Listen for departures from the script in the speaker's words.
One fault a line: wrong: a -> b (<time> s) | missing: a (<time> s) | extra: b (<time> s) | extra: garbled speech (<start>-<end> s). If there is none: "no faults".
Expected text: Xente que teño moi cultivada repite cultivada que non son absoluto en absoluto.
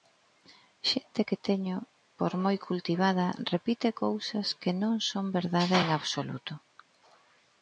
extra: por (2.2 s)
wrong: cultivada -> cousas (4.0 s)
wrong: absoluto -> verdade (5.4 s)